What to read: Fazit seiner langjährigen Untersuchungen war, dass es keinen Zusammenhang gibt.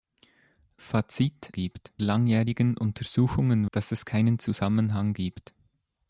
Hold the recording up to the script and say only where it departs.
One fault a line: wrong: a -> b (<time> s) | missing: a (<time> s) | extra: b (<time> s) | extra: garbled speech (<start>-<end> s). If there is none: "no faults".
wrong: seiner -> gibt (1.5 s)
missing: war (3.7 s)